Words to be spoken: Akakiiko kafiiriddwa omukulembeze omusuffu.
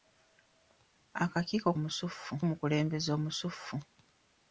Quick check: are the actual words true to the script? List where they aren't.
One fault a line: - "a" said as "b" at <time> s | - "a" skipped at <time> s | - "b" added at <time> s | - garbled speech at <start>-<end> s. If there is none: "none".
- "kafiiriddwa" said as "omusuffu" at 1.8 s